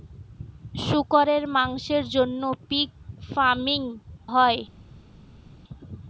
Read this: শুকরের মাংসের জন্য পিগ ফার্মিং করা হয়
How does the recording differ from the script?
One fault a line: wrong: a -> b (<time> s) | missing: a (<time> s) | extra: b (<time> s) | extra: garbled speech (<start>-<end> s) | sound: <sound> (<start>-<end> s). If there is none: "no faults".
missing: করা (3.8 s)